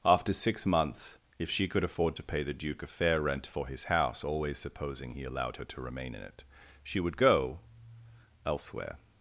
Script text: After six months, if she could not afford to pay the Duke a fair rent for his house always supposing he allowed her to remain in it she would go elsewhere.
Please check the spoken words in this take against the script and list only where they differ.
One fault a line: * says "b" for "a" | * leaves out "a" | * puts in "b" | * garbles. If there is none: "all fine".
* leaves out "not"